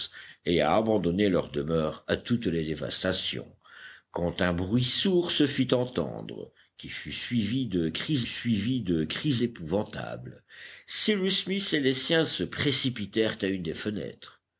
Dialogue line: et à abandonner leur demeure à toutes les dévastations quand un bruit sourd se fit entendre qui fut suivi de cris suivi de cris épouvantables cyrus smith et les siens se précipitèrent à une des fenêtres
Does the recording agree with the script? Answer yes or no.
yes